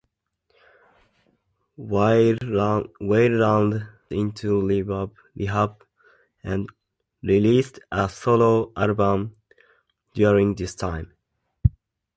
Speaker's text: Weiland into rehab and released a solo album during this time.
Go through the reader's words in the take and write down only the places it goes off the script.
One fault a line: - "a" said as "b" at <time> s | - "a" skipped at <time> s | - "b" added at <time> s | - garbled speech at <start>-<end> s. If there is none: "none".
none